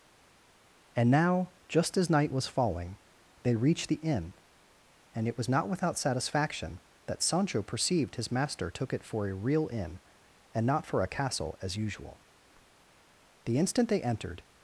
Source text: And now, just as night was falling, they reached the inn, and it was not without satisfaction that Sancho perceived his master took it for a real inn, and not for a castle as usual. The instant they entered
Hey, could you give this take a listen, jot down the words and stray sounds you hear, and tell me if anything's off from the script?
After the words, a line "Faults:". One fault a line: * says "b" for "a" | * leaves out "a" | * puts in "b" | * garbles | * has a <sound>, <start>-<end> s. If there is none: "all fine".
And now, just as night was falling, they reached the inn, and it was not without satisfaction that Sancho perceived his master took it for a real inn, and not for a castle as usual. The instant they entered
Faults:
all fine